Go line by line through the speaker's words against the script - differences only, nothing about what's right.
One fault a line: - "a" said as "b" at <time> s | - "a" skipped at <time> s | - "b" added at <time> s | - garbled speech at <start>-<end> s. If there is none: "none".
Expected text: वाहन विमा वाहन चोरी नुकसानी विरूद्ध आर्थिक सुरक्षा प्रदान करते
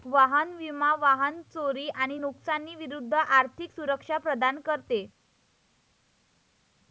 - "आणि" added at 1.9 s